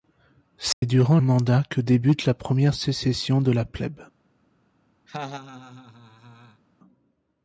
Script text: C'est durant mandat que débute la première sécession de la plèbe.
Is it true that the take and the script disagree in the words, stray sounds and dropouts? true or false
true